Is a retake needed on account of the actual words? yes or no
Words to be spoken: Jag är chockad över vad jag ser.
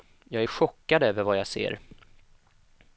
no